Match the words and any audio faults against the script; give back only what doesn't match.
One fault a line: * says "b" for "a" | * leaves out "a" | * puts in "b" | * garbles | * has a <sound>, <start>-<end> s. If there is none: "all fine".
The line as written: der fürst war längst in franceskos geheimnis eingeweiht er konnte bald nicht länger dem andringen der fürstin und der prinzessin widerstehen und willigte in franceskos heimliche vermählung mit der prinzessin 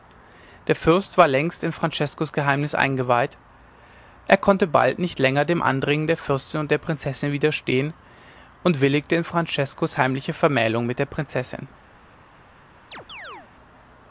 * has a chirp, 12.9-13.5 s